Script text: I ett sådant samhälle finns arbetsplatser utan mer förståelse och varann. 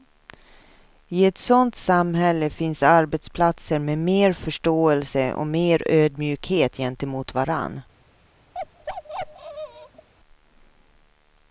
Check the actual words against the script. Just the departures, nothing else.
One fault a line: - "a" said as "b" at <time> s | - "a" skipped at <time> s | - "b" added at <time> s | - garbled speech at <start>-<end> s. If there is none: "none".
- "utan" said as "med" at 3.8 s
- "mer ödmjukhet gentemot" added at 5.5 s